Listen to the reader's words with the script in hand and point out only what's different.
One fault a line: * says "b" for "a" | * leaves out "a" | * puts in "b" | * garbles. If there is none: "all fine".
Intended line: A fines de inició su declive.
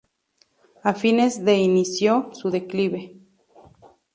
all fine